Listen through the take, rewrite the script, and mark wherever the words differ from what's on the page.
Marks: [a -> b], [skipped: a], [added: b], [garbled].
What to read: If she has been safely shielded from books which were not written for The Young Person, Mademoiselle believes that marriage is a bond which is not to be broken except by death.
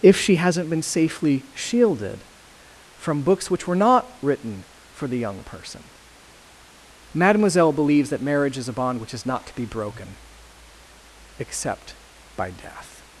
If she [has -> hasn't] been safely shielded from books which were not written for The Young Person, Mademoiselle believes that marriage is a bond which is not to be broken except by death.